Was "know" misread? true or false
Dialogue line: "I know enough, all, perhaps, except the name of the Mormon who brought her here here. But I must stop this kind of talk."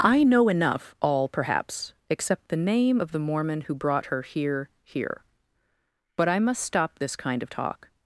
false